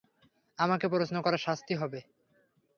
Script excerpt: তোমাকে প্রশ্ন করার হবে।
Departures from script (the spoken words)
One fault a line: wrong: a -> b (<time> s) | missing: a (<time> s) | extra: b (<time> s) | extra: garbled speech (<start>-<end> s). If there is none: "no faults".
wrong: তোমাকে -> আমাকে (0.6 s)
extra: শাস্তি (1.5 s)